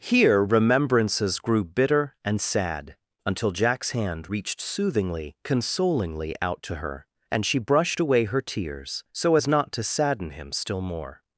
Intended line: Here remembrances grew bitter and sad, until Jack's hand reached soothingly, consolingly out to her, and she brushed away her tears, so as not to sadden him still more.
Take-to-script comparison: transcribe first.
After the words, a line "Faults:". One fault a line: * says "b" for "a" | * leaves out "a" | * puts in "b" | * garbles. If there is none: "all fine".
Here remembrances grew bitter and sad, until Jack's hand reached soothingly, consolingly out to her, and she brushed away her tears, so as not to sadden him still more.
Faults:
all fine